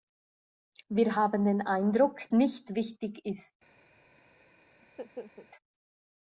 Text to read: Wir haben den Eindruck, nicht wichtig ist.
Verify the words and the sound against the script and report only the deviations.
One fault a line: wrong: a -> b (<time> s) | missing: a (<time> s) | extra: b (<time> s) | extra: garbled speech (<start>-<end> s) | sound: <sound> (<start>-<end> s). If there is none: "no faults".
sound: laugh (4.8-5.5 s)